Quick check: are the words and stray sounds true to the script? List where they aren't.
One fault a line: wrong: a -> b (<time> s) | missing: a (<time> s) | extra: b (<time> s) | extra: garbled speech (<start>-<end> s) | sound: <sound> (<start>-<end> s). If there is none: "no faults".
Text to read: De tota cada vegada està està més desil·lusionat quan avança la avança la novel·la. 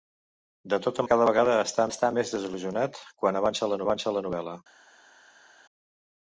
no faults